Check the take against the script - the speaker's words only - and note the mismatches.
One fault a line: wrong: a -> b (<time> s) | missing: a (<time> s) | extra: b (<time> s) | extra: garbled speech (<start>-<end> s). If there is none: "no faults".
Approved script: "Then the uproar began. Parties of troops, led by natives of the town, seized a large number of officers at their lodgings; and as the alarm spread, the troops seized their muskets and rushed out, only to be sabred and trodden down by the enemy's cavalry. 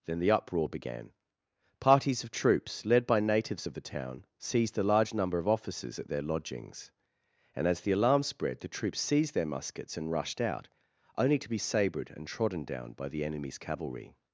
no faults